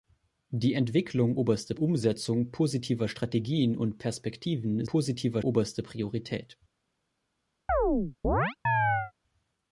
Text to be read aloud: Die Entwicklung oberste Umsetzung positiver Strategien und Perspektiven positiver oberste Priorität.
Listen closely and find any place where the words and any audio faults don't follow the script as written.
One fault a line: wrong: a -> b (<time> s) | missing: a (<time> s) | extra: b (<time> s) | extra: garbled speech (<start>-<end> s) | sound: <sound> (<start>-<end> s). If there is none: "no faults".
sound: chirp (7.7-9.1 s)